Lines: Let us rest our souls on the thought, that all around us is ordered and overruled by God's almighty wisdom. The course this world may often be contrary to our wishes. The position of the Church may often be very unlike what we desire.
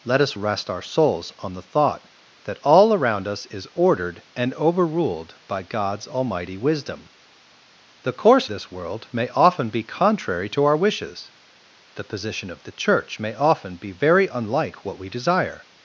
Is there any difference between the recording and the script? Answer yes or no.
no